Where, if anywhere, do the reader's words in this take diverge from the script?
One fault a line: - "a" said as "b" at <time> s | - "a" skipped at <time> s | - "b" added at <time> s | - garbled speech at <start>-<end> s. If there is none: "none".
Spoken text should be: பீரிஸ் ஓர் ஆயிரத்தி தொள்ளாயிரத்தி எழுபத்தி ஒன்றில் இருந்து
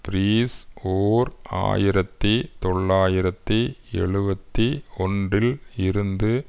none